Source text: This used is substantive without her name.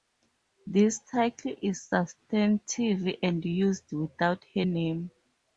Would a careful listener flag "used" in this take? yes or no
yes